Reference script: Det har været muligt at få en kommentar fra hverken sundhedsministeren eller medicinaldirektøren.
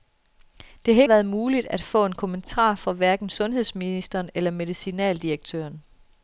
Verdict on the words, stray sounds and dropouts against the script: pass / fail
pass